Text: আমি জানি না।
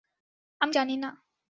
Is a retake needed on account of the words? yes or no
no